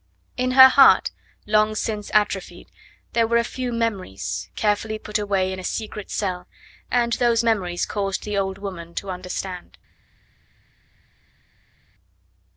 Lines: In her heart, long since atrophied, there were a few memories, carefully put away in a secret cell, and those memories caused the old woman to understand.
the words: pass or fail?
pass